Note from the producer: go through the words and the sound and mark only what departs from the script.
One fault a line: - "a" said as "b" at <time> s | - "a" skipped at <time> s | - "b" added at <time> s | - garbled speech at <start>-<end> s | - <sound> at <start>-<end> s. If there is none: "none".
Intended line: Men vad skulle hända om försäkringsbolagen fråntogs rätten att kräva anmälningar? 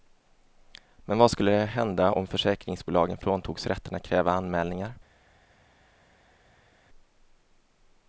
none